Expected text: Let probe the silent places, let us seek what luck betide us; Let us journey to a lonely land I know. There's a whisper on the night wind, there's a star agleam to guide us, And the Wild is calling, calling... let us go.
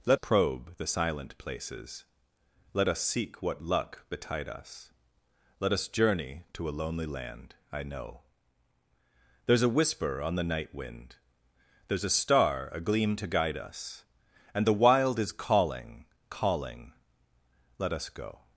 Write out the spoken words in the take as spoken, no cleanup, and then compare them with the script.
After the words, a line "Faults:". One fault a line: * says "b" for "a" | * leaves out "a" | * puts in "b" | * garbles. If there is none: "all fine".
Let probe the silent places, let us seek what luck betide us; Let us journey to a lonely land I know. There's a whisper on the night wind, there's a star agleam to guide us, And the Wild is calling, calling... let us go.
Faults:
all fine